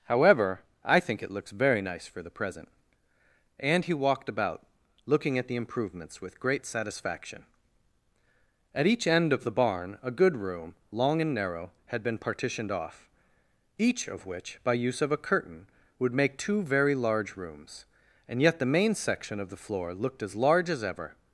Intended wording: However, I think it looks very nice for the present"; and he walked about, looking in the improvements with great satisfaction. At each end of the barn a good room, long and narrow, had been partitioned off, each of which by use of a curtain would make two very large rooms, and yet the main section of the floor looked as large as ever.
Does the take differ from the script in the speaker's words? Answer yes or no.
yes